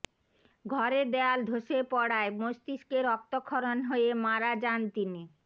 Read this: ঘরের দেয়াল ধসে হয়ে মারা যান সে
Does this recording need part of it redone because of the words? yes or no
yes